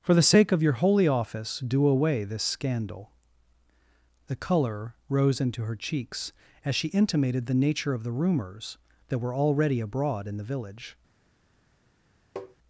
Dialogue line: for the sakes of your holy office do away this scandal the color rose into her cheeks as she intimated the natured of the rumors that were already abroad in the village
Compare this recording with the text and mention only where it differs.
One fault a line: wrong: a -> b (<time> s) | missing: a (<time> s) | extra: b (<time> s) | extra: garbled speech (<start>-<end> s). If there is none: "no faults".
wrong: sakes -> sake (0.2 s)
wrong: natured -> nature (7.5 s)